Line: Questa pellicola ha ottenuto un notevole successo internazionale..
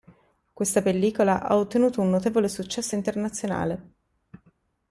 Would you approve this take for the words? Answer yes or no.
yes